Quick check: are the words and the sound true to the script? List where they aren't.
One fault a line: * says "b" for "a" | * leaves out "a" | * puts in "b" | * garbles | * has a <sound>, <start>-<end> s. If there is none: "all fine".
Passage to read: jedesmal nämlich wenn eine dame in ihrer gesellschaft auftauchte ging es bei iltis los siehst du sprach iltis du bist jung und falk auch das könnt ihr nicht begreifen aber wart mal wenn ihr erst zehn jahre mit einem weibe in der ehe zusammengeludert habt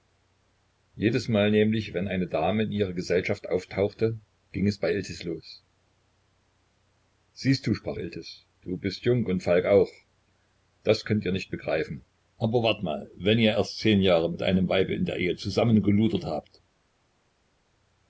all fine